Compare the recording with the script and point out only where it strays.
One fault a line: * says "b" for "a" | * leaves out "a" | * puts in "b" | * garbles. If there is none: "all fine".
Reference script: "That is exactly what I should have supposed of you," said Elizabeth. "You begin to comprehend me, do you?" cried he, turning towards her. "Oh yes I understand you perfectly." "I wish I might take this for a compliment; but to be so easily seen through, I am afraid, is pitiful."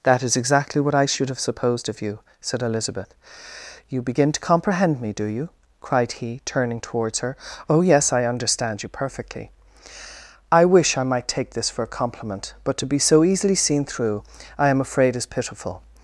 all fine